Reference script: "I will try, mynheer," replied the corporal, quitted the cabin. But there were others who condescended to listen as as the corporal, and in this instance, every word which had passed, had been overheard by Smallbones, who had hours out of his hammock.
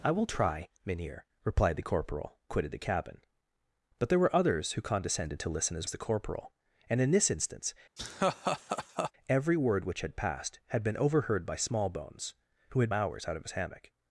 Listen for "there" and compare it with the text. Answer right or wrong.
right